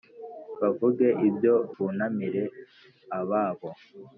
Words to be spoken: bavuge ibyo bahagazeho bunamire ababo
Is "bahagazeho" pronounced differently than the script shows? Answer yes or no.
yes